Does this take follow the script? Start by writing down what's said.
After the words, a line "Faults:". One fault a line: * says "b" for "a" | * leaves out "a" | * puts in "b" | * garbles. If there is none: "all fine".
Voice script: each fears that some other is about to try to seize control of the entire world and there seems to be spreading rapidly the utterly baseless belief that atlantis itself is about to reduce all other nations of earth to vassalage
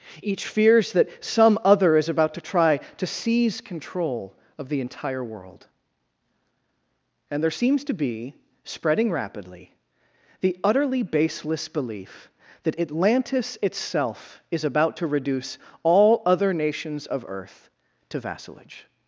each fears that some other is about to try to seize control of the entire world and there seems to be spreading rapidly the utterly baseless belief that atlantis itself is about to reduce all other nations of earth to vassalage
Faults:
all fine